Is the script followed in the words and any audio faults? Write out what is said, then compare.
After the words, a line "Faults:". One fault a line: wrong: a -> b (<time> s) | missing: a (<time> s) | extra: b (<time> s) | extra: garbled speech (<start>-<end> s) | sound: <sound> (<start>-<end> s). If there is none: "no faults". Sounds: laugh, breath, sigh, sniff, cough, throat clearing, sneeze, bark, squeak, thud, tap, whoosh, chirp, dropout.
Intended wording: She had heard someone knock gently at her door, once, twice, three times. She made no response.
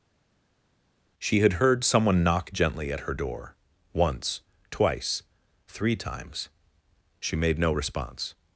She had heard someone knock gently at her door, once, twice, three times. She made no response.
Faults:
no faults